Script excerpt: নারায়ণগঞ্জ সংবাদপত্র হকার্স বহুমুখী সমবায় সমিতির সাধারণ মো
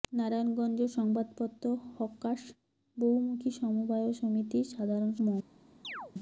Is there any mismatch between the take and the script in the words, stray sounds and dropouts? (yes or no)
yes